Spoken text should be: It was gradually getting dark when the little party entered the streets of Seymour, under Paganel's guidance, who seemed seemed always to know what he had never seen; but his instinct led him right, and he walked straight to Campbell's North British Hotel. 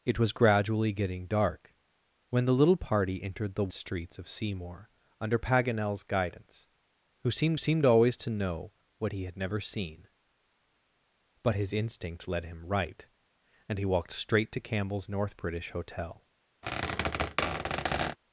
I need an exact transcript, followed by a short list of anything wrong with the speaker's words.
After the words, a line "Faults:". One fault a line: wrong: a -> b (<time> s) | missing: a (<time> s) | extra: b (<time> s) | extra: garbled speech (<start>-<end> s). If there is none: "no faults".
It was gradually getting dark when the little party entered the streets of Seymour, under Paganel's guidance, who seemed seemed always to know what he had never seen; but his instinct led him right, and he walked straight to Campbell's North British Hotel.
Faults:
no faults